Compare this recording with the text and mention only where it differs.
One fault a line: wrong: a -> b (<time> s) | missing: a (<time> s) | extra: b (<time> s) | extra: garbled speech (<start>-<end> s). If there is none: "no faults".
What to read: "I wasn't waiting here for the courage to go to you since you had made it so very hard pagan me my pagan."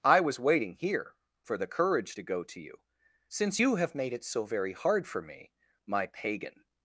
wrong: wasn't -> was (0.2 s)
wrong: had -> have (3.8 s)
wrong: pagan -> for (5.1 s)